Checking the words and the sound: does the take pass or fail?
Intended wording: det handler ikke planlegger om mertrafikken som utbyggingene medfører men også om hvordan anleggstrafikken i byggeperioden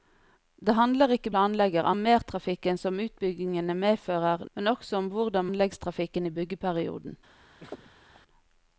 fail